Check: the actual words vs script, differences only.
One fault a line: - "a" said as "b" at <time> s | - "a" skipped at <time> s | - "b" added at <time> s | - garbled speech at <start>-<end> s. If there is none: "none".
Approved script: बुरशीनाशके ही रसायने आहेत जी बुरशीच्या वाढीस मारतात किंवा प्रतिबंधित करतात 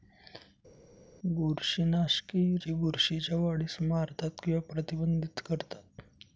- "रसायने आहेत" skipped at 2.6 s